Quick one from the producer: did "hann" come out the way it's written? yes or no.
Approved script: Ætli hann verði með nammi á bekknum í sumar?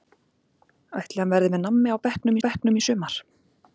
yes